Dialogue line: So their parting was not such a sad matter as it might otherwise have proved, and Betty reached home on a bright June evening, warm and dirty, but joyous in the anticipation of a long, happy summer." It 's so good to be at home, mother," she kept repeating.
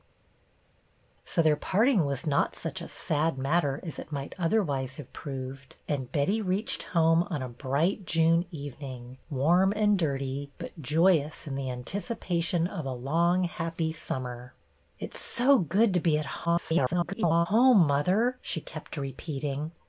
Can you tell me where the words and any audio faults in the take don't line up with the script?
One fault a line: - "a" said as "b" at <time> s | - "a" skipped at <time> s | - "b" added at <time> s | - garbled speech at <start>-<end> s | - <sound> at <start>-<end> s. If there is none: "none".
- garbled speech at 16.4-17.5 s